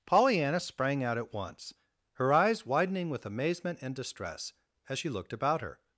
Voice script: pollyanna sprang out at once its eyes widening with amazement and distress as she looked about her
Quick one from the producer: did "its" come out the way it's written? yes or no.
no